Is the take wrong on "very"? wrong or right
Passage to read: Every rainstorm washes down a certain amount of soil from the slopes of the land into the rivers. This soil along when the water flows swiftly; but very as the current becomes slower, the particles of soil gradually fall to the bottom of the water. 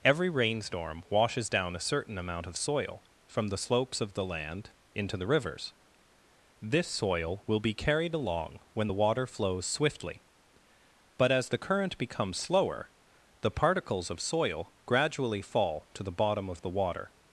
wrong